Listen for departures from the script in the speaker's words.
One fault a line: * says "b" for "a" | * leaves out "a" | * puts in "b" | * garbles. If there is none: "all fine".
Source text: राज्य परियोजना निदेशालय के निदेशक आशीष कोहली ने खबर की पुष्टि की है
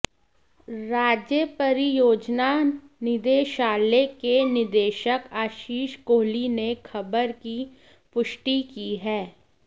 all fine